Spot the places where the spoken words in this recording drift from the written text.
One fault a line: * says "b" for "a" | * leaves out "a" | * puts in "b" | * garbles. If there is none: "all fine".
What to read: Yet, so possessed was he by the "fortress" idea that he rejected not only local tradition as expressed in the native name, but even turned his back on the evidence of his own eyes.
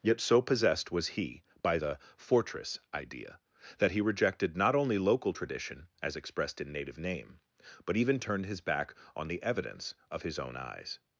* leaves out "the"